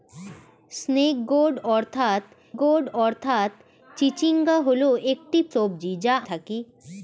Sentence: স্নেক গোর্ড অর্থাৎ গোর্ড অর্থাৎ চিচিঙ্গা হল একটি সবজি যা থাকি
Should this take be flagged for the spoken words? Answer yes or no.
no